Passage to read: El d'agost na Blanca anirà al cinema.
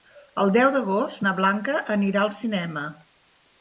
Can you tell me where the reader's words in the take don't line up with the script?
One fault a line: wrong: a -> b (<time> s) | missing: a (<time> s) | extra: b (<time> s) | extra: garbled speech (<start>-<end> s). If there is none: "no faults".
extra: deu (0.6 s)